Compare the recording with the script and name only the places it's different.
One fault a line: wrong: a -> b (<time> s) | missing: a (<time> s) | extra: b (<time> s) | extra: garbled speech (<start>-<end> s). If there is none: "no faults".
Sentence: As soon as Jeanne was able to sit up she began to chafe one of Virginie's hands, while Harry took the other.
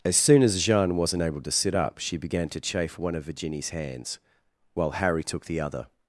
wrong: was -> wasn't (1.0 s)